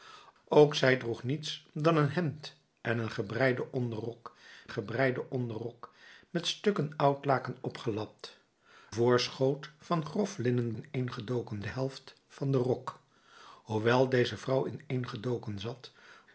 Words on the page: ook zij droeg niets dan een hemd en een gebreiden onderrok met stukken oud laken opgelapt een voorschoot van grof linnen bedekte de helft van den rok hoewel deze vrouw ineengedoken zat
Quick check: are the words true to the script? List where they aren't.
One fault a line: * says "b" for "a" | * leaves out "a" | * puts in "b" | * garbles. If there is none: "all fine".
* puts in "gebreiden onderrok"
* leaves out "een"
* says "ineengedoken" for "bedekte"